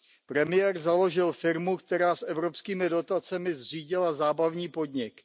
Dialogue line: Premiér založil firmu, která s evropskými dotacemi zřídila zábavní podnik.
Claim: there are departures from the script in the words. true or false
false